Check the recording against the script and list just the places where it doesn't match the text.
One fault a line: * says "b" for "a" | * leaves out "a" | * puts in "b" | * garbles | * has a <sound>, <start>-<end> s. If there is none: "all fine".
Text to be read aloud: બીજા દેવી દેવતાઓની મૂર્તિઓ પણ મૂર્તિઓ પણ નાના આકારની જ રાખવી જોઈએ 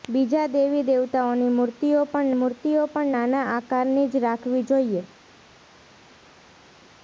all fine